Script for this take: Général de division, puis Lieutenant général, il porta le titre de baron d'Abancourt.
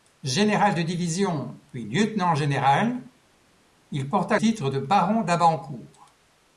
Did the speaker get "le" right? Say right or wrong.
wrong